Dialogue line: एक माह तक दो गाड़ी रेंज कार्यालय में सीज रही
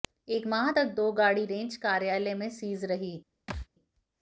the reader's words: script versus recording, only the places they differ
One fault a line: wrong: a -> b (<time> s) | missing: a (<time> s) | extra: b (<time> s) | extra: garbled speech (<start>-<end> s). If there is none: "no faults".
no faults